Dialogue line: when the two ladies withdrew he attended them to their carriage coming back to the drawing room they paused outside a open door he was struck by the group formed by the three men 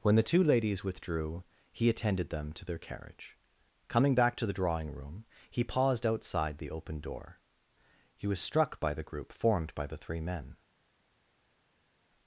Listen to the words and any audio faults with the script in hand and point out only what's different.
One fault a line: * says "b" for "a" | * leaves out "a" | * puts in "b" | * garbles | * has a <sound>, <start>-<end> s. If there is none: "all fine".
* says "he" for "they"
* says "the" for "a"